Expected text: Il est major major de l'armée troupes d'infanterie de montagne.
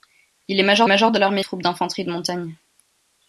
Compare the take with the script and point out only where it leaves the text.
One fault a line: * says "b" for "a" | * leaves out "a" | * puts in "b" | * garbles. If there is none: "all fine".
all fine